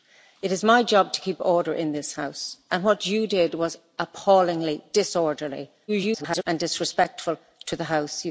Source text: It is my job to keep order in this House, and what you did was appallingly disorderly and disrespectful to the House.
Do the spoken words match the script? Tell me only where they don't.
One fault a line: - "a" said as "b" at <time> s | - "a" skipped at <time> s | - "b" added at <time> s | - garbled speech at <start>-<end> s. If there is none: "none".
- garbled speech at 5.9-6.4 s